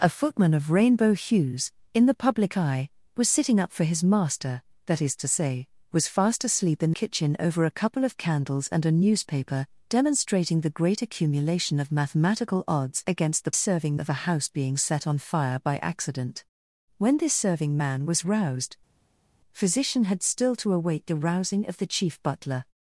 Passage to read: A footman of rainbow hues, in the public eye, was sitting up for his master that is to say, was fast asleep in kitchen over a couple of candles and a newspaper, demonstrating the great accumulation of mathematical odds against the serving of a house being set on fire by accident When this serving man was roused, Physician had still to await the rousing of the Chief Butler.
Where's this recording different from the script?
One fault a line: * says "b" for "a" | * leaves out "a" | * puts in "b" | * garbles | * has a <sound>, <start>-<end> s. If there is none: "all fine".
all fine